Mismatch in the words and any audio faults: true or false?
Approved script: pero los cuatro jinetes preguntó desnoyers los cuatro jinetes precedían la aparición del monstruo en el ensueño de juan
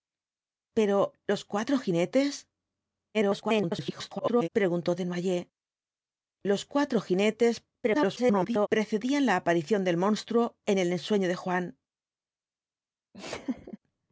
true